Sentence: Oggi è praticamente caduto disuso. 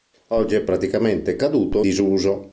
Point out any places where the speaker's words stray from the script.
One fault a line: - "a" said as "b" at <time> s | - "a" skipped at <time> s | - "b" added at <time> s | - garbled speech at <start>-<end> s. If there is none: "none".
none